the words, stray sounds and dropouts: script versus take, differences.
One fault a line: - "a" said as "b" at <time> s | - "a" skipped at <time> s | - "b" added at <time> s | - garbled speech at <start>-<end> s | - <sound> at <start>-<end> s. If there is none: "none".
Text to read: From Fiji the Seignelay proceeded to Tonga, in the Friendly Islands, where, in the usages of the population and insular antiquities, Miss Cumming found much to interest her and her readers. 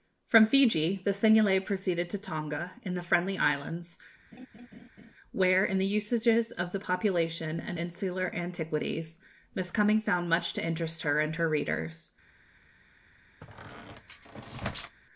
- laugh at 4.3-5.1 s
- squeak at 13.4-15.0 s